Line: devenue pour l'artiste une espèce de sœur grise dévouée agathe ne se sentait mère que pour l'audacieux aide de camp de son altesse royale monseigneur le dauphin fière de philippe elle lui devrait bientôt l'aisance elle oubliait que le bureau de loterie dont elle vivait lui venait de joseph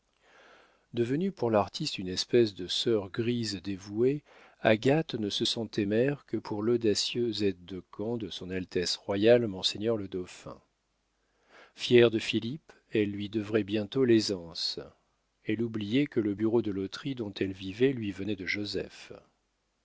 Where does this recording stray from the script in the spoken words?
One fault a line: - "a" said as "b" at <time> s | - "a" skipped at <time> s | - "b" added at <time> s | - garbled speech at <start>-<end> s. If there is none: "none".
none